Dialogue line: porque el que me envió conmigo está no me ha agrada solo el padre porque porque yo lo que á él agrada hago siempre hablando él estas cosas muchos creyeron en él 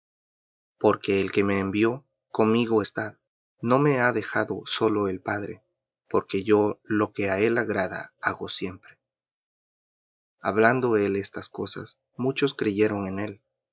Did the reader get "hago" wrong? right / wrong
right